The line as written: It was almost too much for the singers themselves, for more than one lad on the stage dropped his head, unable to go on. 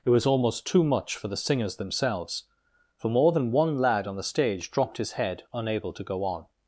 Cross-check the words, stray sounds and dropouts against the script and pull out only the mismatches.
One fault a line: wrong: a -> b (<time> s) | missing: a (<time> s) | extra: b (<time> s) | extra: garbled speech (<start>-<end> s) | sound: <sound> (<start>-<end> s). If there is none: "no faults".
no faults